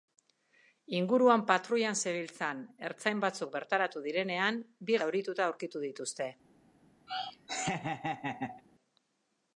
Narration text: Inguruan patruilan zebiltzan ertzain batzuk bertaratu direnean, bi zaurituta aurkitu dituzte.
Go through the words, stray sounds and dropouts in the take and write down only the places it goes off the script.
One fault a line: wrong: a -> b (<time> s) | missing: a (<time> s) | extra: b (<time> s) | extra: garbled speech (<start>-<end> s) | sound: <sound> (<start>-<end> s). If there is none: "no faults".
sound: laugh (7.1-8.6 s)